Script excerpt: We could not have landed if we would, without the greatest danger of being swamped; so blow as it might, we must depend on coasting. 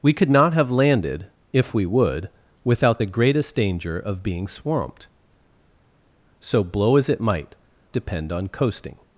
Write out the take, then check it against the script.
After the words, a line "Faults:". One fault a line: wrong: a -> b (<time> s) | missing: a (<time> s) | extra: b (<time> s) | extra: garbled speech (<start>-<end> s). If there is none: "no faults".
We could not have landed if we would, without the greatest danger of being swamped; so blow as it might, depend on coasting.
Faults:
missing: we must (7.5 s)